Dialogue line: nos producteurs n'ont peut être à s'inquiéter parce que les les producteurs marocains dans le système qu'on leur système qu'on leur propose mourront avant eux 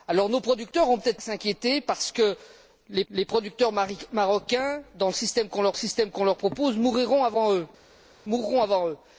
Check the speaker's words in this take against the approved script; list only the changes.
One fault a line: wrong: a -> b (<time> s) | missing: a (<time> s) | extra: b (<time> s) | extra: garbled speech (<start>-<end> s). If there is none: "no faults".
no faults